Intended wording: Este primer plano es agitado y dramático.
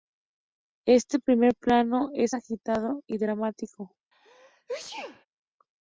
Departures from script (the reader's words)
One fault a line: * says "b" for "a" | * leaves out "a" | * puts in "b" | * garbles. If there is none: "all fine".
all fine